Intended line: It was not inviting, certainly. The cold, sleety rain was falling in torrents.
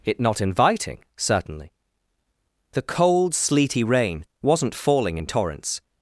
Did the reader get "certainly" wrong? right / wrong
right